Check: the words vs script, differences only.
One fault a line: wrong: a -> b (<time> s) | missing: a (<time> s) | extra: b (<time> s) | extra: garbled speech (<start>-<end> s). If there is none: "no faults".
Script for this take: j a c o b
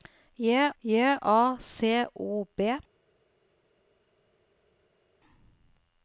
extra: j (0.8 s)